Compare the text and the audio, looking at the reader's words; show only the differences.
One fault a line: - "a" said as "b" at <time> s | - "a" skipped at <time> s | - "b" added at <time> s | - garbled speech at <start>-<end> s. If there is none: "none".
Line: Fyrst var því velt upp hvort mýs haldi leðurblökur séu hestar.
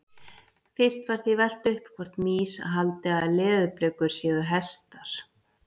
- "að" added at 3.2 s